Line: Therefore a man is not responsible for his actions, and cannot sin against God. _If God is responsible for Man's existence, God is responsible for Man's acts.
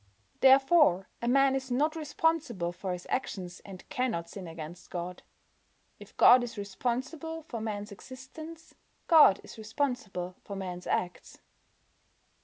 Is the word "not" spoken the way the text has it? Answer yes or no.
yes